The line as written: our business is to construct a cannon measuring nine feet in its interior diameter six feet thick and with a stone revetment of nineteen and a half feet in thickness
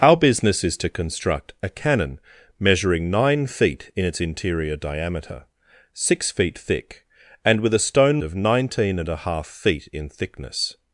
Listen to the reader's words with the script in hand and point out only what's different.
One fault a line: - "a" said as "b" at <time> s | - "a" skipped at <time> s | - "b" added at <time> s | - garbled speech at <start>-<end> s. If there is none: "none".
- "revetment" skipped at 8.2 s